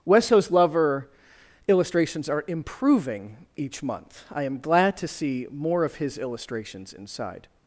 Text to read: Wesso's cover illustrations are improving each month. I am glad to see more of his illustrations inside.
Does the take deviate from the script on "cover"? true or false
true